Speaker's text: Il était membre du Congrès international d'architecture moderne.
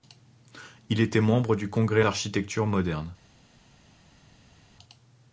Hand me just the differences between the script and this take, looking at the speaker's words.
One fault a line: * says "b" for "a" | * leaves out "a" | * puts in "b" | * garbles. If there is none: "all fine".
* leaves out "international"